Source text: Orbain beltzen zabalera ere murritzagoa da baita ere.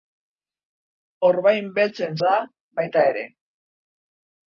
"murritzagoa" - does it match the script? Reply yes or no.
no